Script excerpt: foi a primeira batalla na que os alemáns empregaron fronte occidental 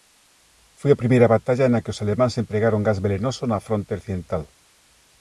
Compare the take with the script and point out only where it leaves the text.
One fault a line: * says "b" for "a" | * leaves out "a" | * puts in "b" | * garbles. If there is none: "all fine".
* puts in "gas velenoso na"